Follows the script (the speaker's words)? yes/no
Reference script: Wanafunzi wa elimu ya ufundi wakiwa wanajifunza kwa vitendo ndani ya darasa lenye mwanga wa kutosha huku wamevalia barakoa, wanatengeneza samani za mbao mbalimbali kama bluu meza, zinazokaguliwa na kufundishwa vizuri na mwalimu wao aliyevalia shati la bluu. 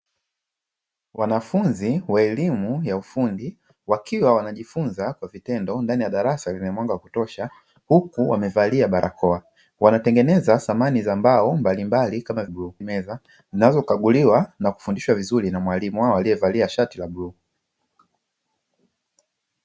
yes